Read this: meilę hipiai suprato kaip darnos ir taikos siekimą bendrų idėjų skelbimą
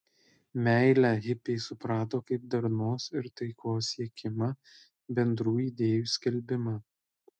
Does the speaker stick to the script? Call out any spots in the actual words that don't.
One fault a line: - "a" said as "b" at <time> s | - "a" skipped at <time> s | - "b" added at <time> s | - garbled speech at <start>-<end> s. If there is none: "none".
none